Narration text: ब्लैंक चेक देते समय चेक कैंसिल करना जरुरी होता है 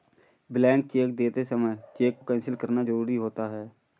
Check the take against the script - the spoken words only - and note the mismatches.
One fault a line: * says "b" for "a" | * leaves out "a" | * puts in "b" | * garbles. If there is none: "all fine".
all fine